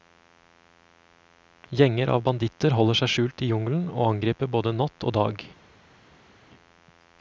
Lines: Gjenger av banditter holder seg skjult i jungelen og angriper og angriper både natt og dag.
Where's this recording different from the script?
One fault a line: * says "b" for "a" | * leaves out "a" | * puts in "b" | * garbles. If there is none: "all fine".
* leaves out "og angriper"